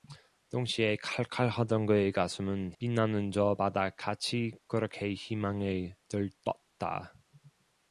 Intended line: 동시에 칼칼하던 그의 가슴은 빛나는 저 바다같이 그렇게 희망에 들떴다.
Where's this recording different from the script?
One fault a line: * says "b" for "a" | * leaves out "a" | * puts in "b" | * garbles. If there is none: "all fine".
all fine